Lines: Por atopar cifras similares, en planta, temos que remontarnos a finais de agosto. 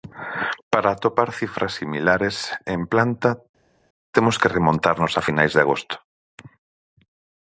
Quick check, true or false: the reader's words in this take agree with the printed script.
false